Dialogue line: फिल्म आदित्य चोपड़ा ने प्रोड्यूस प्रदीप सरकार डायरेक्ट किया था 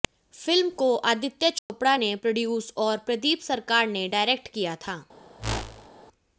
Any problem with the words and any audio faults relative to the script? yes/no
yes